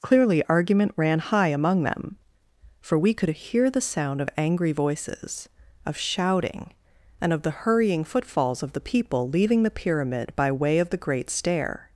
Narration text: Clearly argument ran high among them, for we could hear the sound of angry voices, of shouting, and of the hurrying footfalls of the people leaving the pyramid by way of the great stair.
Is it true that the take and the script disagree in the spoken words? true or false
false